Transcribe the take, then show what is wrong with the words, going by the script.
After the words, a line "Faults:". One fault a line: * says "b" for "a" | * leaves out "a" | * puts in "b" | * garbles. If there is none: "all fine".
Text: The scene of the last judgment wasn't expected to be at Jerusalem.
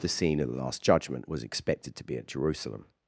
The scene of the last judgment was expected to be at Jerusalem.
Faults:
* says "was" for "wasn't"